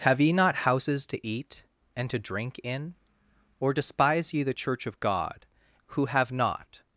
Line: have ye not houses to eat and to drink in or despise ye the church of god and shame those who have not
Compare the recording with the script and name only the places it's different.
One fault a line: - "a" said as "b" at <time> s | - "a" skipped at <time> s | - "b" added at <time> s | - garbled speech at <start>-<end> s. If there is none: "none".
- "and shame those" skipped at 5.4 s